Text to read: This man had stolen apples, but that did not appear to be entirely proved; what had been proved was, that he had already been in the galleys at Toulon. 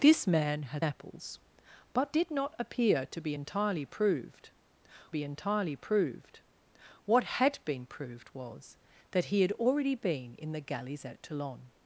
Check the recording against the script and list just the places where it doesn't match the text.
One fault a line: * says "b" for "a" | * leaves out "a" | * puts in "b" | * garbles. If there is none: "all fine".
* leaves out "stolen"
* leaves out "that"
* puts in "be entirely proved"